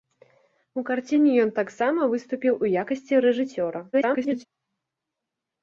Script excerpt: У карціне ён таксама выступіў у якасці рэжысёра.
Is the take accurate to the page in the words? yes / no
no